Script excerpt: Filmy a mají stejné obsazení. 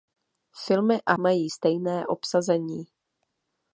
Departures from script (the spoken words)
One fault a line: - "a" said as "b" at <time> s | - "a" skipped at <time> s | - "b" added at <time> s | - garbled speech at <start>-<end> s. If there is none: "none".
none